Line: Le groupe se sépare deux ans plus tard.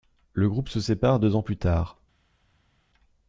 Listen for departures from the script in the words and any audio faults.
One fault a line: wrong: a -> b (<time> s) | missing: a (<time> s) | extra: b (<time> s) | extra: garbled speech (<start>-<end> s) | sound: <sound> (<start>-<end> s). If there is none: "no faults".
no faults